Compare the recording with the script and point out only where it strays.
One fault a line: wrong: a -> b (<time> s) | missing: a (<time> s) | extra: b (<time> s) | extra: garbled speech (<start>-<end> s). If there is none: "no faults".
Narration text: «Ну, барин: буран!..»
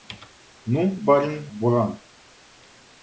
no faults